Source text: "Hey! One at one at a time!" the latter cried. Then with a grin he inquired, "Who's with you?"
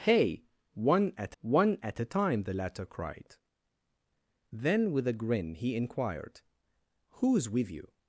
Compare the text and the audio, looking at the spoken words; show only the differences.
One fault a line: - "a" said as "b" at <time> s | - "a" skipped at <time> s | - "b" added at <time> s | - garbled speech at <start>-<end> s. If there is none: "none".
none